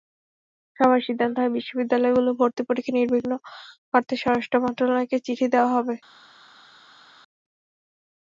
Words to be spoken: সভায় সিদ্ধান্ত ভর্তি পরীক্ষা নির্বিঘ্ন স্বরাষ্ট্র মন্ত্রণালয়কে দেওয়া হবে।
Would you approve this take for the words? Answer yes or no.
no